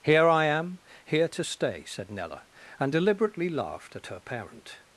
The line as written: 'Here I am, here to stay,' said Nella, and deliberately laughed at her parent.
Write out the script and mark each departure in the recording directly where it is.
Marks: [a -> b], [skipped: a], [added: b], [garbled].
'Here I am, here to stay,' said Nella, and deliberately laughed at her parent.